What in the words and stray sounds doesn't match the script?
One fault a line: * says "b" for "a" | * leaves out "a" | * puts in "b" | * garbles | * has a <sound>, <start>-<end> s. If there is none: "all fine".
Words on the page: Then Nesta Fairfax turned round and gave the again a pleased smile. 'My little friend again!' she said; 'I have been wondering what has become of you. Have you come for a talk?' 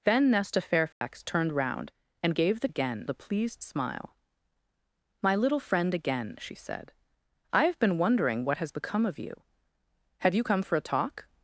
* has a dropout, 0.9-1.0 s